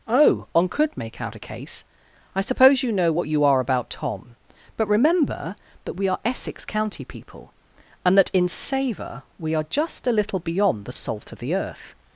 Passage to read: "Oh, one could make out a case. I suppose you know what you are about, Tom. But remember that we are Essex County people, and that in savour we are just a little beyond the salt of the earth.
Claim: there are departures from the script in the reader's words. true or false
true